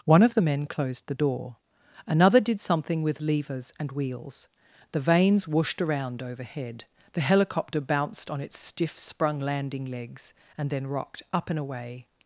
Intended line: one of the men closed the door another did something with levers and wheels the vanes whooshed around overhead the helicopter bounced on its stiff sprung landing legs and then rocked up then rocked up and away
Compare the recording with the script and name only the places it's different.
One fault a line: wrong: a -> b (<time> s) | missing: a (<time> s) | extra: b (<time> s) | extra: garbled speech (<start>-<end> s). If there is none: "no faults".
missing: then rocked up (11.5 s)